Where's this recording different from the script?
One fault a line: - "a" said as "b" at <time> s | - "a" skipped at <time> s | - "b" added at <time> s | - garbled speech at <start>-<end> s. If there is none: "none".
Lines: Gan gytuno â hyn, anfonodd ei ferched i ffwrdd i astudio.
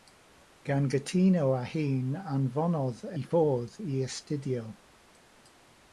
- "ei ferched" skipped at 3.0 s